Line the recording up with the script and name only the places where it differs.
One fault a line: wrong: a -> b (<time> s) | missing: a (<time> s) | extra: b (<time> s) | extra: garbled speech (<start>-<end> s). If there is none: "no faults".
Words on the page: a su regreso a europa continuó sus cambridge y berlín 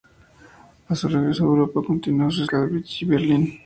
no faults